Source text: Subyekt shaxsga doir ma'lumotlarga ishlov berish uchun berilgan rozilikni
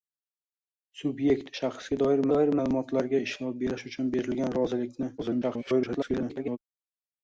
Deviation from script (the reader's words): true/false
true